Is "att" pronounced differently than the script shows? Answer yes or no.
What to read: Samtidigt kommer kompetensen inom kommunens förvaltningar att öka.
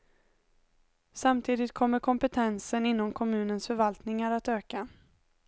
no